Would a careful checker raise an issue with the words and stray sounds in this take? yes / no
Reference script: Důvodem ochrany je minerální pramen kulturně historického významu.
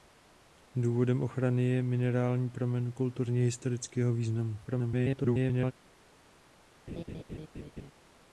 yes